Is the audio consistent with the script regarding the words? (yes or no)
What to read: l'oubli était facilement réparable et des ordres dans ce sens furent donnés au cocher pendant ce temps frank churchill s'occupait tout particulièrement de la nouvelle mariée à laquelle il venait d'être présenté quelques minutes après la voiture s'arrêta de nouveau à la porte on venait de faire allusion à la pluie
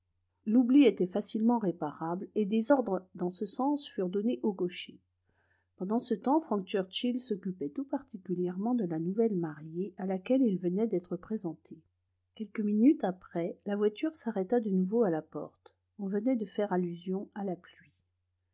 yes